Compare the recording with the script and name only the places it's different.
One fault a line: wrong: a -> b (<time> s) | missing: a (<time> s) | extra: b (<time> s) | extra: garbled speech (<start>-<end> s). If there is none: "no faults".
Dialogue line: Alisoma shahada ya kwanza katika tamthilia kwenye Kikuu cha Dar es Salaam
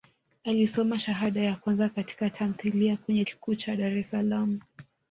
no faults